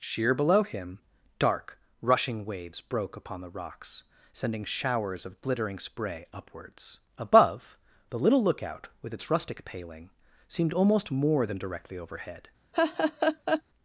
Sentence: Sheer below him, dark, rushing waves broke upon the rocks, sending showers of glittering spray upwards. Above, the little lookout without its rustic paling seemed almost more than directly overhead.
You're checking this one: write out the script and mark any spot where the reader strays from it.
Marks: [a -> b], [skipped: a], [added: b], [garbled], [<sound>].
Sheer below him, dark, rushing waves broke upon the rocks, sending showers of glittering spray upwards. Above, the little lookout [without -> with] its rustic paling seemed almost more than directly overhead. [laugh]